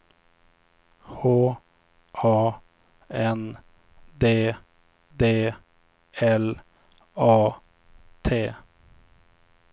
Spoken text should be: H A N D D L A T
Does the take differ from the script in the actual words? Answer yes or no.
no